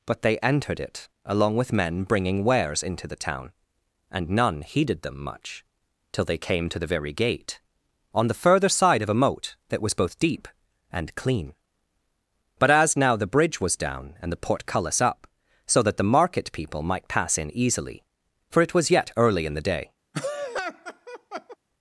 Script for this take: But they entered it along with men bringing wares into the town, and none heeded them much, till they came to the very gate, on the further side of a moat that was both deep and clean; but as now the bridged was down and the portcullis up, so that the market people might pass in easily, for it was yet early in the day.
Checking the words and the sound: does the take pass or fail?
fail